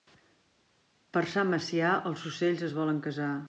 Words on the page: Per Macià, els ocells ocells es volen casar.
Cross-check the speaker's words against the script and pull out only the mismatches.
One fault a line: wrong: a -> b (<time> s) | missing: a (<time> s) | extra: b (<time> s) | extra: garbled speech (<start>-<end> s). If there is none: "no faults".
extra: Sant (1.3 s)
missing: ocells (2.6 s)